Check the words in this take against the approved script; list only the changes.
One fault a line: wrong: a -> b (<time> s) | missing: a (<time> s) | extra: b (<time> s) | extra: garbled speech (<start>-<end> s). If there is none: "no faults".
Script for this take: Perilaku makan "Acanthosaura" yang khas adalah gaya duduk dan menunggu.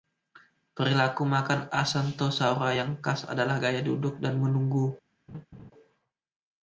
no faults